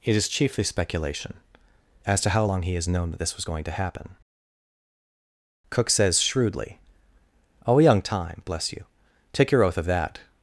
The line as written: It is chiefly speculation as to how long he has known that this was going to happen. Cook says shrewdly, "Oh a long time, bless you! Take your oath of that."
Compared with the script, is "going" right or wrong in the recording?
right